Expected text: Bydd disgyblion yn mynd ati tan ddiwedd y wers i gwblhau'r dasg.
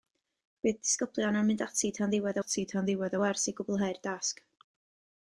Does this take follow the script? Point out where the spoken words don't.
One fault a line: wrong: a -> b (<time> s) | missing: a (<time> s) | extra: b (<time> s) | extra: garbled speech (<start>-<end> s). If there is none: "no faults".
extra: ati tan ddiwedd (2.4 s)